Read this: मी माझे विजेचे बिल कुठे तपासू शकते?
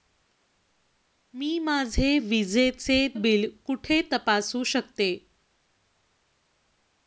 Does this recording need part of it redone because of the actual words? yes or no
no